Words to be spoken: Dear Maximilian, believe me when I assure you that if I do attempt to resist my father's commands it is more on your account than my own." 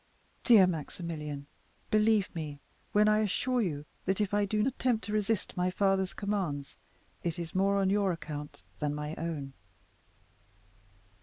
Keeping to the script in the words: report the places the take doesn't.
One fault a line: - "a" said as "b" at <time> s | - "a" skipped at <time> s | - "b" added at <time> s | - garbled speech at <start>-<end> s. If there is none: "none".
none